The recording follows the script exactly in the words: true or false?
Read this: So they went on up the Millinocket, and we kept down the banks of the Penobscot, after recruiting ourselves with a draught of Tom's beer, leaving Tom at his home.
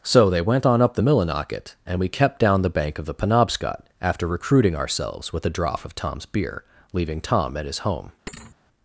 false